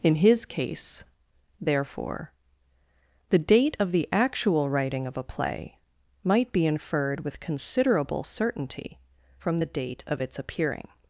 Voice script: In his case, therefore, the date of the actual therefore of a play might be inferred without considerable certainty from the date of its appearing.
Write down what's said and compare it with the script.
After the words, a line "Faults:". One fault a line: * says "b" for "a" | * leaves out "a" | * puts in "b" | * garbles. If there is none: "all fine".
In his case, therefore, the date of the actual writing of a play might be inferred with considerable certainty from the date of its appearing.
Faults:
* says "writing" for "therefore"
* says "with" for "without"